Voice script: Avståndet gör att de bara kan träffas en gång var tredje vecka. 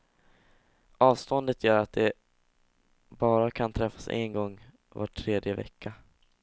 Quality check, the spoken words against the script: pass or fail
pass